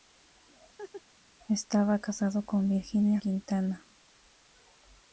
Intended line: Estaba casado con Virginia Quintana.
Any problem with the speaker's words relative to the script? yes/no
no